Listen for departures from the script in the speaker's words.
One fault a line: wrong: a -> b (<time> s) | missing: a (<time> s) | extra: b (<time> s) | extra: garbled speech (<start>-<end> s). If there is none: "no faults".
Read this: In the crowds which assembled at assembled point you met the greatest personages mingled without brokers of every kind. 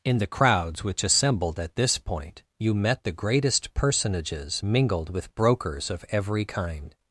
wrong: assembled -> this (1.8 s)
wrong: without -> with (5.1 s)